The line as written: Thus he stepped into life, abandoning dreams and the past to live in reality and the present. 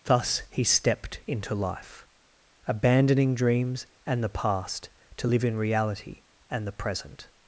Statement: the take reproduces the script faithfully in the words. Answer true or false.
true